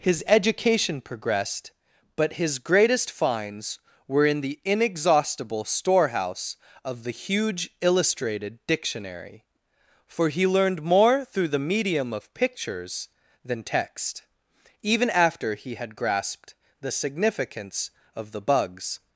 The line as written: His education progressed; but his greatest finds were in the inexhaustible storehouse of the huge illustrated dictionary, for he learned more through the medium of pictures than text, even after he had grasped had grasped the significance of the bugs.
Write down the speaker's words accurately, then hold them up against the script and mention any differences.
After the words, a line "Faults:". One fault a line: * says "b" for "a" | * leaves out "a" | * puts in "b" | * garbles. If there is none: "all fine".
His education progressed; but his greatest finds were in the inexhaustible storehouse of the huge illustrated dictionary, for he learned more through the medium of pictures than text, even after he had grasped the significance of the bugs.
Faults:
* leaves out "had grasped"